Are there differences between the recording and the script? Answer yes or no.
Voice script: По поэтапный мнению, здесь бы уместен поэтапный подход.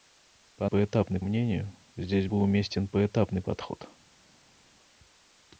no